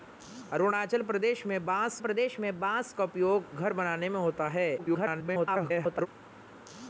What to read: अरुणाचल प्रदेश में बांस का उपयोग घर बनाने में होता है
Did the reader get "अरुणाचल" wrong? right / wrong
right